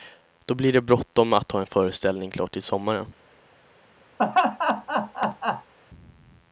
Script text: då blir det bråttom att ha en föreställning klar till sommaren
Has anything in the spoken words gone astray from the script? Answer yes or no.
no